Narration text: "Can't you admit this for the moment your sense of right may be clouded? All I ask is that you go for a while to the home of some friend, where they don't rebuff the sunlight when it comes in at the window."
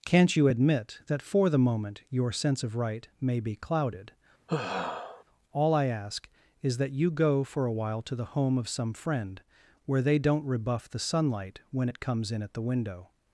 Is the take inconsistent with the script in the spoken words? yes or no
yes